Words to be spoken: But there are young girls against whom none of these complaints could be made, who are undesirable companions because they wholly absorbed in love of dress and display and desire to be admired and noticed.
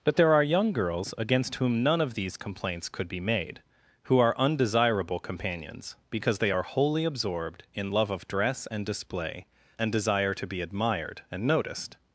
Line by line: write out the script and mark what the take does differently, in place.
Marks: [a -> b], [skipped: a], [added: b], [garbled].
But there are young girls against whom none of these complaints could be made, who are undesirable companions because they [added: are] wholly absorbed in love of dress and display and desire to be admired and noticed.